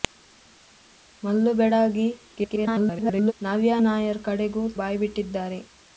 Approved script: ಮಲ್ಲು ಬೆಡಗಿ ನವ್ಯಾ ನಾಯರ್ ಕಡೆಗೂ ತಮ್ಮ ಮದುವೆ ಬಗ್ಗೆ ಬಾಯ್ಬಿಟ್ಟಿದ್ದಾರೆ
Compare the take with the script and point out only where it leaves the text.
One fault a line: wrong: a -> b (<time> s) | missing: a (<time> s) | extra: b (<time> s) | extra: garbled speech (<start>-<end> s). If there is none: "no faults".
extra: garbled speech (2.4-3.3 s)
missing: ತಮ್ಮ ಮದುವೆ ಬಗ್ಗೆ (4.6 s)